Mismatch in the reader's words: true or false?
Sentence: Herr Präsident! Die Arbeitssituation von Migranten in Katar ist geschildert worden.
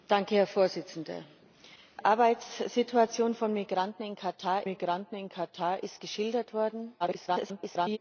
true